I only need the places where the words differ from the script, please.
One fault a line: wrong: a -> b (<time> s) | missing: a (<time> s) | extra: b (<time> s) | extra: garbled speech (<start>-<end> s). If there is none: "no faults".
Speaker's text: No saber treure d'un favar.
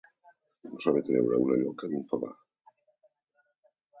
extra: una lloca (1.5 s)